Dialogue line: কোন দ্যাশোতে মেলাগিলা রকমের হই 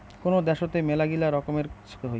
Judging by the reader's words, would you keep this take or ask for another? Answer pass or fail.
pass